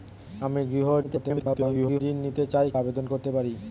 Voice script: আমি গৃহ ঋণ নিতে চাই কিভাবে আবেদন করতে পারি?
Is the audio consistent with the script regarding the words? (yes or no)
no